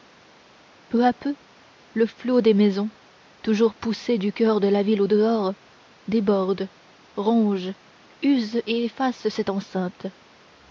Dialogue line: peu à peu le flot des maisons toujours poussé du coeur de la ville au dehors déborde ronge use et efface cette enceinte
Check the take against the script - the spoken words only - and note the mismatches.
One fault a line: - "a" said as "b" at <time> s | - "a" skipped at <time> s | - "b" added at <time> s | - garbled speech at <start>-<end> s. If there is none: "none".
none